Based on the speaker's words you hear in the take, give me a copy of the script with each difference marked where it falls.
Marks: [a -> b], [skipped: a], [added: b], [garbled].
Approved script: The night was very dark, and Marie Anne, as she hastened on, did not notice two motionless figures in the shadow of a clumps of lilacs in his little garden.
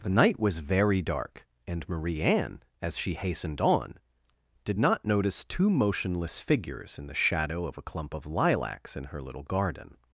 The night was very dark, and Marie Anne, as she hastened on, did not notice two motionless figures in the shadow of a [clumps -> clump] of lilacs in [his -> her] little garden.